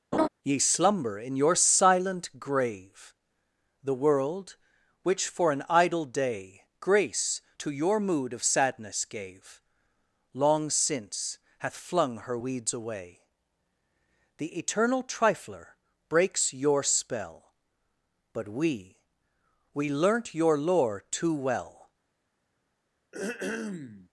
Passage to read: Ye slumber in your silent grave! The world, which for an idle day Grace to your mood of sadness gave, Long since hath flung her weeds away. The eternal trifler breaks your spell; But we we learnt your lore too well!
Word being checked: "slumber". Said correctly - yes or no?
yes